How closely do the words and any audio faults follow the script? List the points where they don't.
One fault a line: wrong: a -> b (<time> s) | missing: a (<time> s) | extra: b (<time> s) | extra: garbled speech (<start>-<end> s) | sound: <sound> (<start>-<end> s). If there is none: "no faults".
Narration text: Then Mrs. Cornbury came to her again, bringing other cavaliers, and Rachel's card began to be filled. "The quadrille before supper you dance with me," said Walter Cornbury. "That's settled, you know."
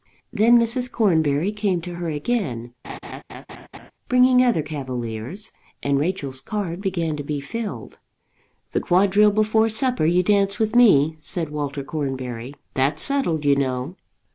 sound: laugh (2.8-3.9 s)